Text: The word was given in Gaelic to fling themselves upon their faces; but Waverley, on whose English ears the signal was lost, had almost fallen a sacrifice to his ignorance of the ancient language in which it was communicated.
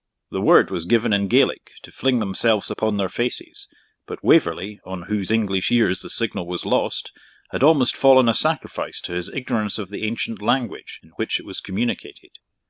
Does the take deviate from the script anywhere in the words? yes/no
no